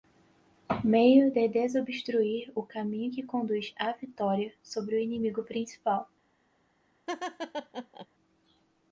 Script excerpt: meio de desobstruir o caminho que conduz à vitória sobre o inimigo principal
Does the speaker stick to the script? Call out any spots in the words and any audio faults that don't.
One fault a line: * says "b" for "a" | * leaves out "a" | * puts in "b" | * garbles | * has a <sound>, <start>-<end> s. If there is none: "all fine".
* has a laugh, 7.1-8.1 s